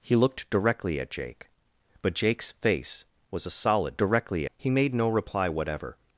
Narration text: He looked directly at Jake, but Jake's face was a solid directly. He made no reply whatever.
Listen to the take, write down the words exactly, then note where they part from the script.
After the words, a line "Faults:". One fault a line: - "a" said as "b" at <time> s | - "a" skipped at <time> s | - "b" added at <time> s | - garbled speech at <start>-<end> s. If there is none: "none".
He looked directly at Jake, but Jake's face was a solid directly. He made no reply whatever.
Faults:
none